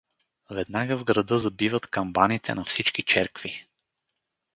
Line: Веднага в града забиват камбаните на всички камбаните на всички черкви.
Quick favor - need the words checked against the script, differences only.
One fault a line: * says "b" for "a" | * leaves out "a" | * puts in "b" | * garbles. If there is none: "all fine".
* leaves out "камбаните на всички"